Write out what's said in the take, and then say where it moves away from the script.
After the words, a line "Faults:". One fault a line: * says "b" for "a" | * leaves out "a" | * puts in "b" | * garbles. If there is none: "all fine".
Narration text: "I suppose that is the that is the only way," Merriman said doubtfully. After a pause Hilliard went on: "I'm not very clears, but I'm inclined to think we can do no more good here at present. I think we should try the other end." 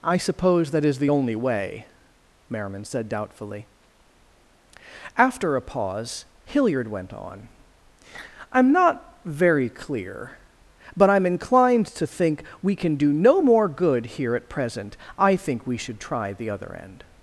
"I suppose that is the only way," Merriman said doubtfully. After a pause Hilliard went on: "I'm not very clear, but I'm inclined to think we can do no more good here at present. I think we should try the other end."
Faults:
* leaves out "that is the"
* says "clear" for "clears"